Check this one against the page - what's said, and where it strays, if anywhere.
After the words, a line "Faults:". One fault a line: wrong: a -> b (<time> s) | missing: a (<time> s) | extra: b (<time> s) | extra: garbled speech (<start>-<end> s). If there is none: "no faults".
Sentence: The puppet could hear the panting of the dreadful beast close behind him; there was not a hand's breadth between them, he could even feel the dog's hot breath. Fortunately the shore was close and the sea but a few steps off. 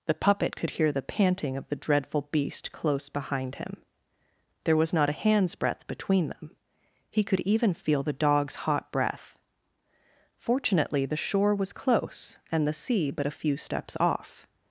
The puppet could hear the panting of the dreadful beast close behind him; there was not a hand's breadth between them, he could even feel the dog's hot breath. Fortunately the shore was close and the sea but a few steps off.
Faults:
no faults